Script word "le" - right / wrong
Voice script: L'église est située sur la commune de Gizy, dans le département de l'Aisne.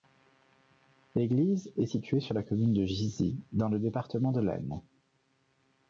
right